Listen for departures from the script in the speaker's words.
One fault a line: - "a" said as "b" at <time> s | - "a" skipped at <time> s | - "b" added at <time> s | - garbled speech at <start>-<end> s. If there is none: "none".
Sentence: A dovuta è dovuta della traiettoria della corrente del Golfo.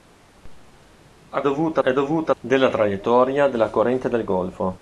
none